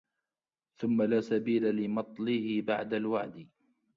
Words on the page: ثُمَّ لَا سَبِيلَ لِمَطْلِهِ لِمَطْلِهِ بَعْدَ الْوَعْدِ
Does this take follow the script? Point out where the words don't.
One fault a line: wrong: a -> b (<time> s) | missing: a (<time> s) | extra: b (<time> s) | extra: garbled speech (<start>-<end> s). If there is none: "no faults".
missing: لِمَطْلِهِ (2.6 s)